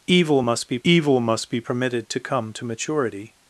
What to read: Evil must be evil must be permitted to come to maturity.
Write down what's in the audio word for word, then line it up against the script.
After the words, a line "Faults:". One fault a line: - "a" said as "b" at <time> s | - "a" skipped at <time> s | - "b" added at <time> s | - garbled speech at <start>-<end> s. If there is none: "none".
Evil must be evil must be permitted to come to maturity.
Faults:
none